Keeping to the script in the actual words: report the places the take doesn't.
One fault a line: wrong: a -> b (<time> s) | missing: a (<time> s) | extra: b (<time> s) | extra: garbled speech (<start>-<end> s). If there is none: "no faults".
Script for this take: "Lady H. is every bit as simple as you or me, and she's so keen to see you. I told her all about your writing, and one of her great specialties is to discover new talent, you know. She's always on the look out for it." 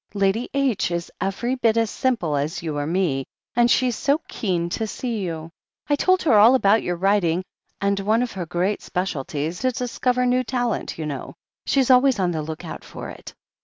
missing: is (9.6 s)